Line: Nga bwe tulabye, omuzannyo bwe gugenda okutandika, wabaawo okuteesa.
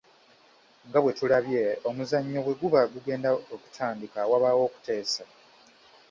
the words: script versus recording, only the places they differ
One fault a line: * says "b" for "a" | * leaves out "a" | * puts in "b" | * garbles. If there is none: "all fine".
* puts in "guba"